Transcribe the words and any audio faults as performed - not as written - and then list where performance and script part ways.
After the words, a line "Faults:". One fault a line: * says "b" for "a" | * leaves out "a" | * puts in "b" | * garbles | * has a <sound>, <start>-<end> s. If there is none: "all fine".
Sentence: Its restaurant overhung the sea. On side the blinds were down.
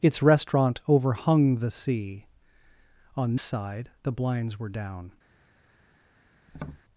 Its restaurant overhung the sea. On side the blinds were down.
Faults:
* has a tap, 6.5-6.8 s